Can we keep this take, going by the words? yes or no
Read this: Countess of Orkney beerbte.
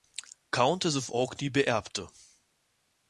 yes